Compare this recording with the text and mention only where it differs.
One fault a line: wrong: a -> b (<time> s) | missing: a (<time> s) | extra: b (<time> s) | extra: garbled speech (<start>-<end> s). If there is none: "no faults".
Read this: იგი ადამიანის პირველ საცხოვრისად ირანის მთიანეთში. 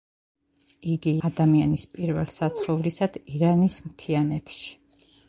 no faults